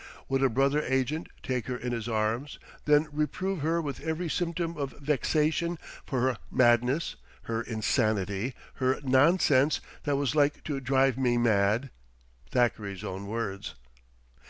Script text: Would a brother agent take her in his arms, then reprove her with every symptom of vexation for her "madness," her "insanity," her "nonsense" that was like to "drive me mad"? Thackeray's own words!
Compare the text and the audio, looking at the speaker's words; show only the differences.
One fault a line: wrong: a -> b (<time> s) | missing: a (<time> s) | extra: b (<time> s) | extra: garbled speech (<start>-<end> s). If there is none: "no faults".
no faults